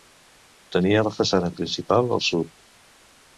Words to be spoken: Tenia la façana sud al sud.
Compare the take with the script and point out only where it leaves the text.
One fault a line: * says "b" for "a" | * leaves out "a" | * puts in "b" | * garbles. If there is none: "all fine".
* says "principal" for "sud"